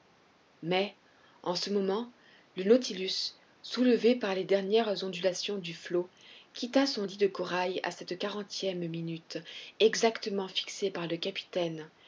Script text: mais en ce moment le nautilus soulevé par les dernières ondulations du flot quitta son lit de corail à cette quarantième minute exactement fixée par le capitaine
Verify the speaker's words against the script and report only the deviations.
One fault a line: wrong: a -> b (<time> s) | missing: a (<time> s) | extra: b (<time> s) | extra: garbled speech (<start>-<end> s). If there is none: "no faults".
no faults